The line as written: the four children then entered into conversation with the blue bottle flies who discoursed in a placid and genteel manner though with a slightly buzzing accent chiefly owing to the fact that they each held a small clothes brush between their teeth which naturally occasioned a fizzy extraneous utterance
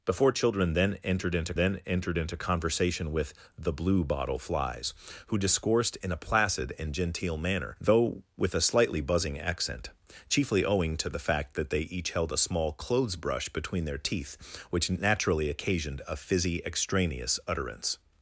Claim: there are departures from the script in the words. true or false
true